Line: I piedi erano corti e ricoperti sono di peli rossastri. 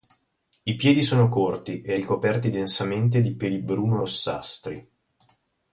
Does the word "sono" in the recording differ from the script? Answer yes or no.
yes